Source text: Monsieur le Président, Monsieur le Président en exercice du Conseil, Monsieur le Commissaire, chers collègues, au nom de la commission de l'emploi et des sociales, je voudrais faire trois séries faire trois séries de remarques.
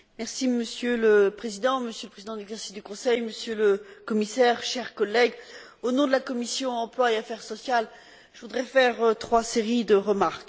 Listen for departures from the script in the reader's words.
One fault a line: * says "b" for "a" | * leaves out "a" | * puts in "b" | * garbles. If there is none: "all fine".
* puts in "affaires"
* leaves out "faire trois séries"